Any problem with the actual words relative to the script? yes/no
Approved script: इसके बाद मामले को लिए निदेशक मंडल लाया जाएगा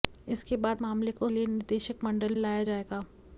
no